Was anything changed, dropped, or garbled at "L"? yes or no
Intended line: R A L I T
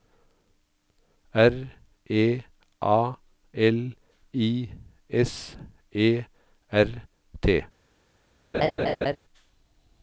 no